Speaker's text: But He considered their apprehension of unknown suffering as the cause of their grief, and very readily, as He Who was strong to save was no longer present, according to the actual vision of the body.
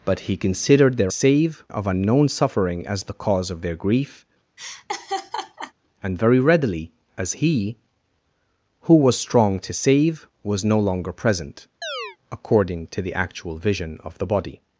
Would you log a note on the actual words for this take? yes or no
yes